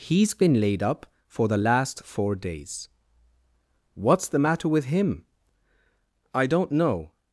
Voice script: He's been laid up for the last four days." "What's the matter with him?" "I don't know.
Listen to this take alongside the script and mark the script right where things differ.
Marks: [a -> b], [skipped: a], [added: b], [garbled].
He's been laid up for the last four days." "What's the matter with him?" "I don't know.